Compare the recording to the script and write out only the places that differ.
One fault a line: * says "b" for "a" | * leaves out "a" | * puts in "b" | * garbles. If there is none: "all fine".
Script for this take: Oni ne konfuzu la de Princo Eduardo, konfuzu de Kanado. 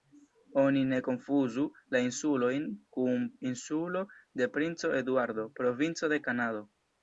* puts in "insulojn kun Insulo"
* says "provinco" for "konfuzu"